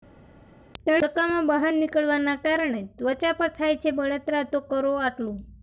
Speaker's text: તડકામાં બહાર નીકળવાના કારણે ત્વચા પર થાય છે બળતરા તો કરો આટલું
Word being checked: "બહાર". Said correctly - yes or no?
yes